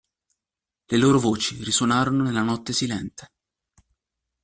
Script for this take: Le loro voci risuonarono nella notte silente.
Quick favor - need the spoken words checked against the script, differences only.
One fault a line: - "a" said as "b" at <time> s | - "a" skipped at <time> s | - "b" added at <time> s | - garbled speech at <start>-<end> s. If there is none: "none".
none